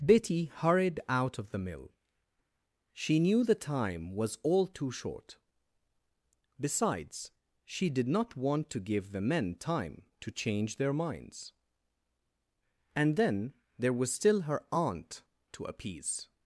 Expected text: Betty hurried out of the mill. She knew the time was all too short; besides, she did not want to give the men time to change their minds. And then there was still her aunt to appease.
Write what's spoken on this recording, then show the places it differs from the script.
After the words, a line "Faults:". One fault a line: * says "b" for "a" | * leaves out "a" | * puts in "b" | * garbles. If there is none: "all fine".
Betty hurried out of the mill. She knew the time was all too short; besides, she did not want to give the men time to change their minds. And then there was still her aunt to appease.
Faults:
all fine